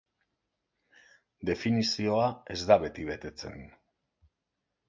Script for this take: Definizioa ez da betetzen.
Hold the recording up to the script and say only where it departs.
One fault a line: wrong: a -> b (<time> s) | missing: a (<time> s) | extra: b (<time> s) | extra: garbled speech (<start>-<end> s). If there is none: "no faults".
extra: beti (2.9 s)